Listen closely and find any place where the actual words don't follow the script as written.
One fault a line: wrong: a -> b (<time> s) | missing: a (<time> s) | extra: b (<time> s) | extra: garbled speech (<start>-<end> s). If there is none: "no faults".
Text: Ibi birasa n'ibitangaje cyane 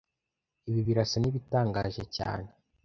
no faults